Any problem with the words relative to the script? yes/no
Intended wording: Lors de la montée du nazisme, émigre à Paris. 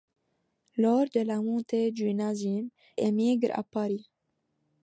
no